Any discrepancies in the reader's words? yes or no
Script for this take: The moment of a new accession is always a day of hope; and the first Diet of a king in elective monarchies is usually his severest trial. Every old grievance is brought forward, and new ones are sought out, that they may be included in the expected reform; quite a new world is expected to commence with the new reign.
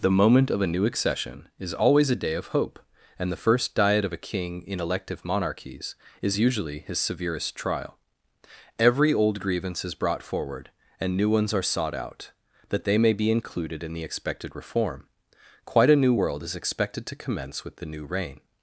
no